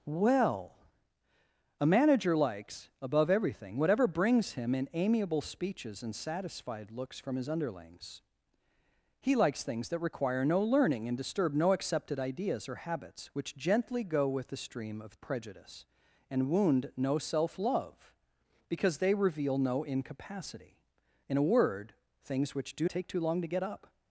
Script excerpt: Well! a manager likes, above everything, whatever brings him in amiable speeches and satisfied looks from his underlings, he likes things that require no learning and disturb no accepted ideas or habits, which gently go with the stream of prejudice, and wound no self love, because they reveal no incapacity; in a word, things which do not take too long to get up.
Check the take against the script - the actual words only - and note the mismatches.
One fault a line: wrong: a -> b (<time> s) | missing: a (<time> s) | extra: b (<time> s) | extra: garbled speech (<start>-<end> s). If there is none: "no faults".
missing: not (22.9 s)